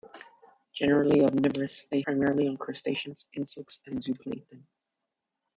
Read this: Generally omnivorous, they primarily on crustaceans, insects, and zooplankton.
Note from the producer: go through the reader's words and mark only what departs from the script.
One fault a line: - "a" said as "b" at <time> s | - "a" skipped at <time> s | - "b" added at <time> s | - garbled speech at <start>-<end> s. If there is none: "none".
none